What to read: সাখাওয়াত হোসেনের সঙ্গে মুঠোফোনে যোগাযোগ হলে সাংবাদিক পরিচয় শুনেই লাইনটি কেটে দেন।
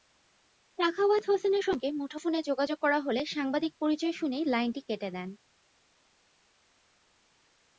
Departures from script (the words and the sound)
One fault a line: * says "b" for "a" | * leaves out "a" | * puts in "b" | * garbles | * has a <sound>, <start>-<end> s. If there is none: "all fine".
* puts in "করা"